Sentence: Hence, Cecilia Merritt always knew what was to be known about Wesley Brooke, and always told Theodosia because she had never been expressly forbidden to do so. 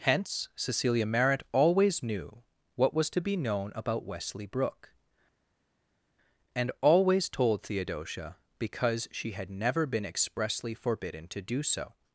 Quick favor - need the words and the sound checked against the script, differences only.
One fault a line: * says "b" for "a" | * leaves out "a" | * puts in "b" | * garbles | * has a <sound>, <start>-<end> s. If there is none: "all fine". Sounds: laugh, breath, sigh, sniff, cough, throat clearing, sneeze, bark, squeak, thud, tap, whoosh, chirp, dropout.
all fine